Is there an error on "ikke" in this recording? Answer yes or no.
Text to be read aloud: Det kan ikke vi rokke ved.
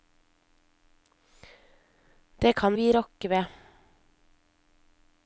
yes